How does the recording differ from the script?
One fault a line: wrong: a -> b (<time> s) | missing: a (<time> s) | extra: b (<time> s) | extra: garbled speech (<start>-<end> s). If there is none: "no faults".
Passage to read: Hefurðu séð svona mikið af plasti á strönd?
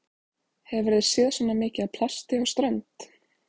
no faults